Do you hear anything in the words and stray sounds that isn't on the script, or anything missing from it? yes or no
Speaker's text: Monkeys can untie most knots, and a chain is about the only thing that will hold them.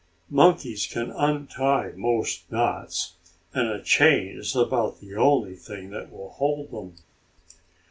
no